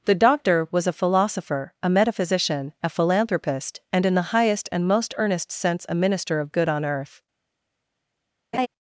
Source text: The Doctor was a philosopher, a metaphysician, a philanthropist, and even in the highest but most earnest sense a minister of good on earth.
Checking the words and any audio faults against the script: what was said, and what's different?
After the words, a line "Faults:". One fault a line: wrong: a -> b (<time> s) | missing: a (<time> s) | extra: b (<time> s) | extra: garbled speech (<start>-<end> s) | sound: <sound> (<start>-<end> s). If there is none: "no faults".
The Doctor was a philosopher, a metaphysician, a philanthropist, and in the highest and most earnest sense a minister of good on earth.
Faults:
missing: even (4.1 s)
wrong: but -> and (4.7 s)
sound: laugh (8.5-8.7 s)